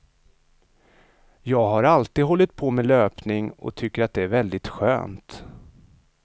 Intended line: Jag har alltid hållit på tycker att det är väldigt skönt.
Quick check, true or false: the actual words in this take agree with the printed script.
false